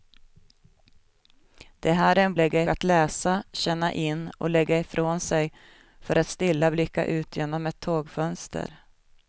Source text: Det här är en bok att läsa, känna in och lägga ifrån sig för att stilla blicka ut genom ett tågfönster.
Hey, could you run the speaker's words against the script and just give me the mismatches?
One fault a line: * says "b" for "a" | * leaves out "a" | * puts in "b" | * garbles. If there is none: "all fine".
* says "lägga" for "bok"